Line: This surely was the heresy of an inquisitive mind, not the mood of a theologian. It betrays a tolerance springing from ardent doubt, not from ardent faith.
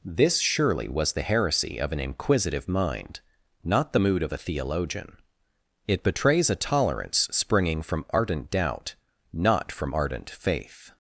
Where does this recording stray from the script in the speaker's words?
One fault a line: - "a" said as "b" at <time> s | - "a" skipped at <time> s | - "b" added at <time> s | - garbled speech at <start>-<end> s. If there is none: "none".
none